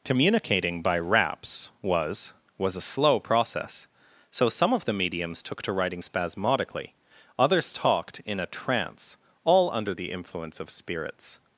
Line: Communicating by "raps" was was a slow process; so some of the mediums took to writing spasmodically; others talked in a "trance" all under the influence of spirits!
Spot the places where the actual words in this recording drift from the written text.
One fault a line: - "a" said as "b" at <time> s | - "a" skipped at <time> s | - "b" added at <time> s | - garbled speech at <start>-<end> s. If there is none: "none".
none